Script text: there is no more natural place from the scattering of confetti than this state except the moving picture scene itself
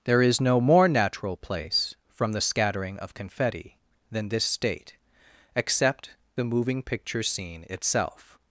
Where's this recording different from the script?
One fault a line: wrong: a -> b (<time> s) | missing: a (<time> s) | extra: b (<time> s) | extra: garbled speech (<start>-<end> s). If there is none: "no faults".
no faults